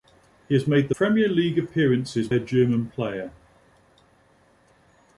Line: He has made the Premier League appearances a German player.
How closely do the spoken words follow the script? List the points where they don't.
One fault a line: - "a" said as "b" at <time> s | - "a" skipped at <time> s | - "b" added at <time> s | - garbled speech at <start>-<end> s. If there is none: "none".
none